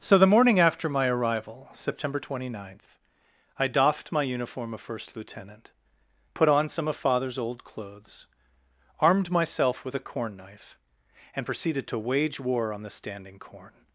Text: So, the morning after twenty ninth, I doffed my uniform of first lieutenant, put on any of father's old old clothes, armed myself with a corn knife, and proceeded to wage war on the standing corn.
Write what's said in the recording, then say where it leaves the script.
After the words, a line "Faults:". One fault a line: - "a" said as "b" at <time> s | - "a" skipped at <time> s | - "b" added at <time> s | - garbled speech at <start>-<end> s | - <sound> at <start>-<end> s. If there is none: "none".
So, the morning after my arrival, September twenty ninth, I doffed my uniform of first lieutenant, put on some of father's old clothes, armed myself with a corn knife, and proceeded to wage war on the standing corn.
Faults:
- "my arrival September" added at 0.9 s
- "any" said as "some" at 6.7 s
- "old" skipped at 7.6 s